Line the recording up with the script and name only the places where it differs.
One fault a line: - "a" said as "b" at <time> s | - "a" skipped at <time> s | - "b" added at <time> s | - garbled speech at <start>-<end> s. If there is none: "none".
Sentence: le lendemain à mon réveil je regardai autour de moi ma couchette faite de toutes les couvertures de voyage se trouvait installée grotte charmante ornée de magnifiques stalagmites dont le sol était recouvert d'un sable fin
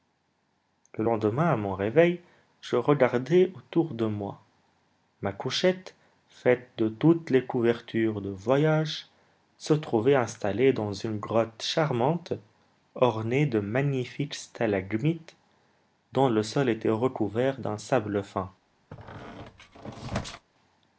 - "dans une" added at 10.7 s